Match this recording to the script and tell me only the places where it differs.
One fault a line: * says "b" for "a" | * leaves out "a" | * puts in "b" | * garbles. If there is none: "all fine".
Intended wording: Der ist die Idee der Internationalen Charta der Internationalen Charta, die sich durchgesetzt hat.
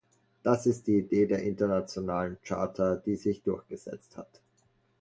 * says "Das" for "Der"
* leaves out "der Internationalen Charta"